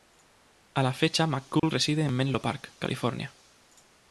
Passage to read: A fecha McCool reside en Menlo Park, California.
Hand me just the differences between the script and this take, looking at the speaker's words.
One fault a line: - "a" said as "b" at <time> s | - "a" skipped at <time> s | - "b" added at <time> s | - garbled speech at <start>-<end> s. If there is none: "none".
- "la" added at 0.8 s